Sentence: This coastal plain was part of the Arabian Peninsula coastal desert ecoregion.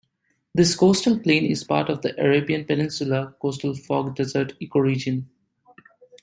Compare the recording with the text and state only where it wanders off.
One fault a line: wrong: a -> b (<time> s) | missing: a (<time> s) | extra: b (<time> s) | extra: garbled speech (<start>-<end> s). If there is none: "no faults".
wrong: was -> is (1.4 s)
extra: fog (3.7 s)